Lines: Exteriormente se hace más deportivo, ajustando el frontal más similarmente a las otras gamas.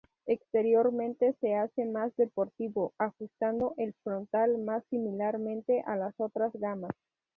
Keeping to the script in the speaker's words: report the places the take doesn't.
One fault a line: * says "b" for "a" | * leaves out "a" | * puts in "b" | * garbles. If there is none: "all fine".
all fine